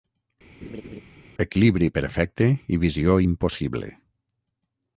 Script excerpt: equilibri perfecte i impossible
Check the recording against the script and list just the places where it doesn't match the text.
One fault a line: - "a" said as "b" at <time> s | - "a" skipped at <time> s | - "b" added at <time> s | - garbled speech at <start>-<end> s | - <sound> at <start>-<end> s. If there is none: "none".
- laugh at 0.6-1.0 s
- "visió" added at 2.9 s